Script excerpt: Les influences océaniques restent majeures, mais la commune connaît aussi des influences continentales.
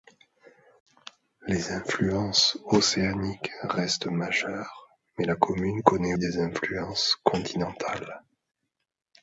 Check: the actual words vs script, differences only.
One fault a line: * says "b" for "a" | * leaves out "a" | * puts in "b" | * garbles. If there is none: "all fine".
* leaves out "aussi"